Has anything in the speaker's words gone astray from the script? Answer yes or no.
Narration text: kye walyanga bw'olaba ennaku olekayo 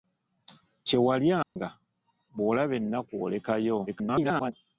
yes